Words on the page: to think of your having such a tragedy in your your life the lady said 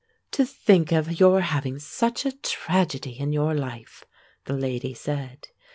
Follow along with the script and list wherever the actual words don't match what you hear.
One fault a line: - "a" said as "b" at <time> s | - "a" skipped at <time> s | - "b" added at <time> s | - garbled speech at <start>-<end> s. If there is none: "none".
- "your" skipped at 3.5 s